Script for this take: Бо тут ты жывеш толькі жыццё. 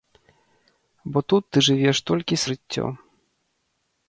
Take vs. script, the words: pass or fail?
pass